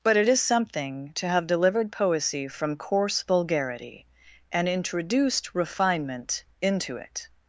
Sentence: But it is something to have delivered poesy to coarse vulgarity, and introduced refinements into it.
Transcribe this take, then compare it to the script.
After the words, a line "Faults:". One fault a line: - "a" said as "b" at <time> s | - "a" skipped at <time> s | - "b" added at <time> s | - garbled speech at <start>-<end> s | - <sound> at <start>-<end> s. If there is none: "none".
But it is something to have delivered poesy from coarse vulgarity, and introduced refinement into it.
Faults:
- "to" said as "from" at 2.5 s
- "refinements" said as "refinement" at 5.5 s